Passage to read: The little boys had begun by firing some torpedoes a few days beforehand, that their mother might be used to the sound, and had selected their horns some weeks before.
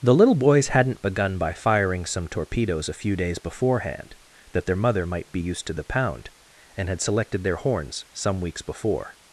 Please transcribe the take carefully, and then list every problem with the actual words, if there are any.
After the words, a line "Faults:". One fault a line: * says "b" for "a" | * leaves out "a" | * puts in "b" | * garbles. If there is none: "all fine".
The little boys hadn't begun by firing some torpedoes a few days beforehand, that their mother might be used to the pound, and had selected their horns some weeks before.
Faults:
* says "hadn't" for "had"
* says "pound" for "sound"